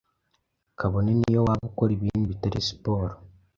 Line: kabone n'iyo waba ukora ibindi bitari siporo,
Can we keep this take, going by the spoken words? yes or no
yes